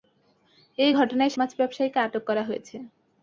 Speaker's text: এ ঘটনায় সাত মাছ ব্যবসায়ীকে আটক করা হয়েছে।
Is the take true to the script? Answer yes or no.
no